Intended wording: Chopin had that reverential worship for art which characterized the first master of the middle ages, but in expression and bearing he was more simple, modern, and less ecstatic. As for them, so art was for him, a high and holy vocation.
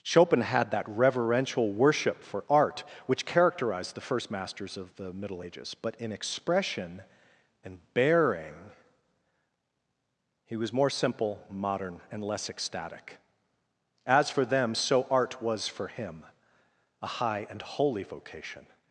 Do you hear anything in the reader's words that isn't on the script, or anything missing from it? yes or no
yes